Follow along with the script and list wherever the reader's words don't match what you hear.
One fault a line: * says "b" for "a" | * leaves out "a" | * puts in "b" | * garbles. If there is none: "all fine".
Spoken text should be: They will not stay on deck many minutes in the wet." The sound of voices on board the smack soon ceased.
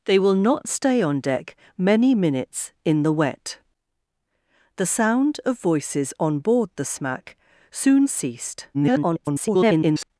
* garbles